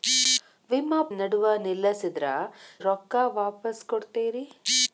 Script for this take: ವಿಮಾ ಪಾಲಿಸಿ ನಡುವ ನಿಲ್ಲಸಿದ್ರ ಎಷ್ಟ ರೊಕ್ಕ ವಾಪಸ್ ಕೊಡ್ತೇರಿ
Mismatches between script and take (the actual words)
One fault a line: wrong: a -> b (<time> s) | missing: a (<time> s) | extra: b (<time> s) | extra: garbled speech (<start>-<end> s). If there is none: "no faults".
missing: ಪಾಲಿಸಿ (1.0 s)
missing: ಎಷ್ಟ (2.2 s)